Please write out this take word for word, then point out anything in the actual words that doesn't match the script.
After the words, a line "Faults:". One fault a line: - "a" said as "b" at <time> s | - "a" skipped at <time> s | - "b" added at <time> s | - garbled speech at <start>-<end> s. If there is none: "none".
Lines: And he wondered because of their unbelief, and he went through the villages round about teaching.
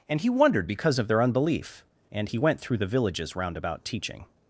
And he wondered because of their unbelief, and he went through the villages round about teaching.
Faults:
none